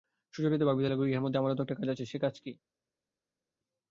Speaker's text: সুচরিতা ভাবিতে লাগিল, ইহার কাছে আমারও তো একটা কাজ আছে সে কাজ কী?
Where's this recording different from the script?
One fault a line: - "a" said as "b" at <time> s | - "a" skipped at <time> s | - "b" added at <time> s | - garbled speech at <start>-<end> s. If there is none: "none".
- "কাছে" said as "মধ্যে" at 1.3 s